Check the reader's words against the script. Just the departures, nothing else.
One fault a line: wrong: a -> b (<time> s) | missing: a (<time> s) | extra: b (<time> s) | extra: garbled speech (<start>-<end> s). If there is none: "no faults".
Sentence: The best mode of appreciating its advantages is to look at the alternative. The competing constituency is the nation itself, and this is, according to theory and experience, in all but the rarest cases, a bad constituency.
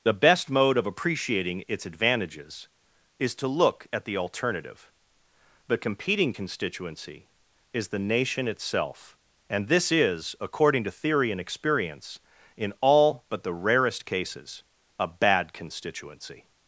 no faults